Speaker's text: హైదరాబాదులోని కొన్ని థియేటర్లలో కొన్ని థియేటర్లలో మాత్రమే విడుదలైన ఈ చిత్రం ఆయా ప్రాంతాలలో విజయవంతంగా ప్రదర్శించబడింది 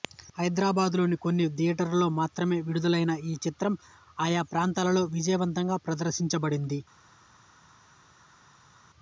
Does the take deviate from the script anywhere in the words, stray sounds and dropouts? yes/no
yes